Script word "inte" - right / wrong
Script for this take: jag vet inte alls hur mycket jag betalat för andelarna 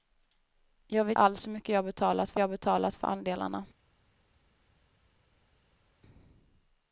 wrong